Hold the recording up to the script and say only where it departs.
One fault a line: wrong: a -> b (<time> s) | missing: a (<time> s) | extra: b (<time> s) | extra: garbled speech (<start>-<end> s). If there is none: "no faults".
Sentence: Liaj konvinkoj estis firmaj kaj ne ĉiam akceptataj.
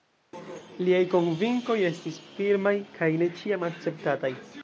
no faults